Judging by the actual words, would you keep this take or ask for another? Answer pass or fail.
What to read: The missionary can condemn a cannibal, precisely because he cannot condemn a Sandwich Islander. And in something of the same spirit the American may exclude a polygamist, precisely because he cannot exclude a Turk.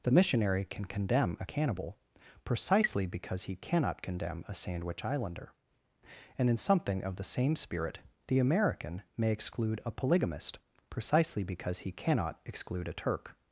pass